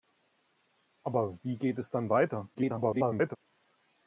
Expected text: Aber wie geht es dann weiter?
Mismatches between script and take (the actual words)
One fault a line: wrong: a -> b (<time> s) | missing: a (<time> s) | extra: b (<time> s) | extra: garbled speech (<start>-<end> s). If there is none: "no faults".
extra: garbled speech (2.5-3.4 s)